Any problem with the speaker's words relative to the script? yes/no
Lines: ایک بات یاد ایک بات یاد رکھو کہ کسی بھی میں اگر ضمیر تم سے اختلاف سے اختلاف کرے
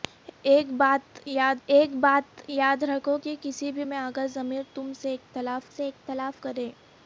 no